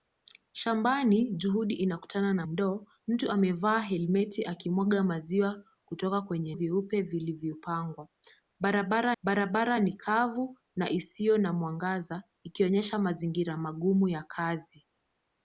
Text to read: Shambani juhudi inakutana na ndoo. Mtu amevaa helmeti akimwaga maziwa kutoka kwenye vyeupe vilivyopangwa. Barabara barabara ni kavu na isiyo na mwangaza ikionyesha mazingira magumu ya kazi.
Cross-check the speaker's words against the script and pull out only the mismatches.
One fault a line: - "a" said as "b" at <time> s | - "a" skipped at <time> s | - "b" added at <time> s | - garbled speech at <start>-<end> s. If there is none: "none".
none